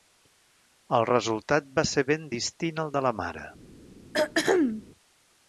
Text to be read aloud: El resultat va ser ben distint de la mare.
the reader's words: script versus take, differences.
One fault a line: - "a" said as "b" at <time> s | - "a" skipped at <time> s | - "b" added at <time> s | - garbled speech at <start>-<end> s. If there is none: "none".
- "al" added at 2.8 s